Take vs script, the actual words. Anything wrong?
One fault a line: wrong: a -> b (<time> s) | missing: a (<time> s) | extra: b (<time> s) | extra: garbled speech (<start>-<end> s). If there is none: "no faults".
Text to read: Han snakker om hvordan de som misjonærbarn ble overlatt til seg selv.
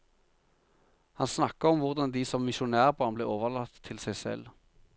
no faults